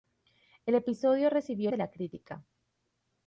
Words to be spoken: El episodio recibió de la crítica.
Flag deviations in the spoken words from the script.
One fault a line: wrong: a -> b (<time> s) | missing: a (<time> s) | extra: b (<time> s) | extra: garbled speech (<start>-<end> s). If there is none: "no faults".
no faults